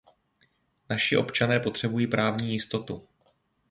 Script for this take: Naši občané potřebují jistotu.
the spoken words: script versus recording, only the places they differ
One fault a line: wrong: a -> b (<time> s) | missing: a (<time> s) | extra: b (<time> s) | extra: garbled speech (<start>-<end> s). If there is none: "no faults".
extra: právní (2.1 s)